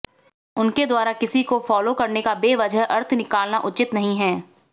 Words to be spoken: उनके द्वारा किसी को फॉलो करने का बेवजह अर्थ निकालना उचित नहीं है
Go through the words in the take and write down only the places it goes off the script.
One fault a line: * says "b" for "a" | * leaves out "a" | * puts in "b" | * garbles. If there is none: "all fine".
all fine